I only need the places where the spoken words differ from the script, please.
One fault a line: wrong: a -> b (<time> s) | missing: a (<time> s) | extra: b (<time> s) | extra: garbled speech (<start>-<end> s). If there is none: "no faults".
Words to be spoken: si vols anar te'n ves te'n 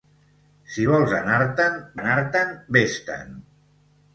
extra: anar te'n (2.0 s)